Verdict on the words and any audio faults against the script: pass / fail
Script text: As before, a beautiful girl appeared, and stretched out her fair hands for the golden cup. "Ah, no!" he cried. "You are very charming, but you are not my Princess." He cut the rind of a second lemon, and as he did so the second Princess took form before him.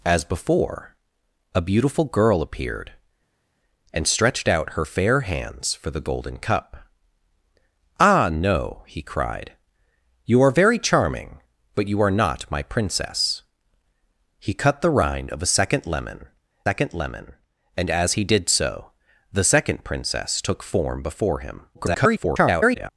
fail